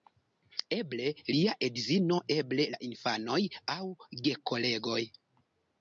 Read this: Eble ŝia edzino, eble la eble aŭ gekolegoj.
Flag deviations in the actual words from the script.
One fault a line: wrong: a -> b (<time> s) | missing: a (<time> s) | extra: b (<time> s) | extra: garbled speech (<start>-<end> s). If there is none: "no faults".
wrong: ŝia -> lia (1.4 s)
wrong: eble -> infanoj (2.9 s)